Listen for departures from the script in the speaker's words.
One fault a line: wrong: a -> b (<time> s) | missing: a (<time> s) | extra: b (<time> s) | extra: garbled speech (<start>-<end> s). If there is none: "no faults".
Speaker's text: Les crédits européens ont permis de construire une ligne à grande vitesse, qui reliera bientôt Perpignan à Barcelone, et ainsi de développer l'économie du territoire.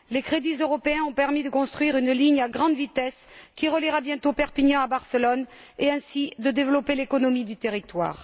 no faults